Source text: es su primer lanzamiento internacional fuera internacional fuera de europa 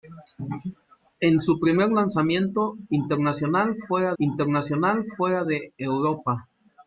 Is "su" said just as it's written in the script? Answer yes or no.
yes